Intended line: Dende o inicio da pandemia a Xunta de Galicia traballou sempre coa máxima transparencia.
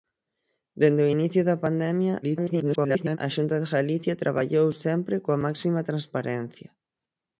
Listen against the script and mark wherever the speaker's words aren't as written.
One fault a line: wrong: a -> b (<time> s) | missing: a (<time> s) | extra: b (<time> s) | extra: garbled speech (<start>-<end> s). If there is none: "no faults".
extra: garbled speech (2.2-3.2 s)